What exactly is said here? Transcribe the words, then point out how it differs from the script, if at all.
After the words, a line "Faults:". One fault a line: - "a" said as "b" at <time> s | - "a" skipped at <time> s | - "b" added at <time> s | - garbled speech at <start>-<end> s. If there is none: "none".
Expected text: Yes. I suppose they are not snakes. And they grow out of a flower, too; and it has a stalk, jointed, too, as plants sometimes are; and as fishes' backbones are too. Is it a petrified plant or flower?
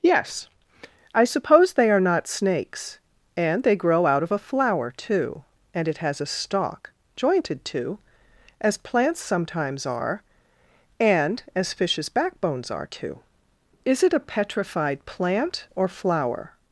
Yes. I suppose they are not snakes. And they grow out of a flower, too; and it has a stalk, jointed, too, as plants sometimes are; and as fishes' backbones are too. Is it a petrified plant or flower?
Faults:
none